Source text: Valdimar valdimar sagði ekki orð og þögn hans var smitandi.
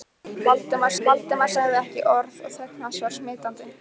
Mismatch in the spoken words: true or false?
false